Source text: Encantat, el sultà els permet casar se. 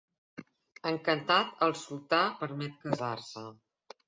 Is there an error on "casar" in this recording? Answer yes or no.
no